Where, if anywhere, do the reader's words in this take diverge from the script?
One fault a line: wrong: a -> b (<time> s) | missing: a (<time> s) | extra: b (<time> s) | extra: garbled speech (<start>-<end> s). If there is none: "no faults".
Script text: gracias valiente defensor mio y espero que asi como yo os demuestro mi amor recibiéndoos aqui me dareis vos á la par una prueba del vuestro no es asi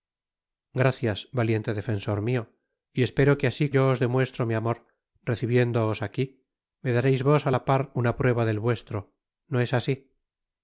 missing: como (3.7 s)